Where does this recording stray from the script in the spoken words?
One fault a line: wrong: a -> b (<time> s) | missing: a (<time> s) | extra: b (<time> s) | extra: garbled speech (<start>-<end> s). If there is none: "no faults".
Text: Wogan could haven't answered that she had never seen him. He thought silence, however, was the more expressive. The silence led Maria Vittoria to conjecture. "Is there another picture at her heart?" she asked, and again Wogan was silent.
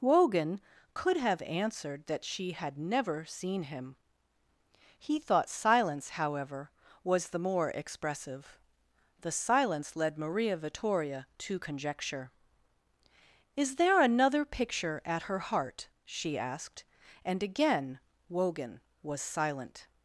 wrong: haven't -> have (1.1 s)